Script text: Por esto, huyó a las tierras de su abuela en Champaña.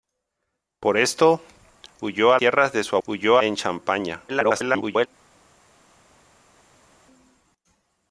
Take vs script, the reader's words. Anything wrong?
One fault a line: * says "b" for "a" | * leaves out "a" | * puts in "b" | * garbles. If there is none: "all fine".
* leaves out "las"
* says "huyó" for "abuela"
* garbles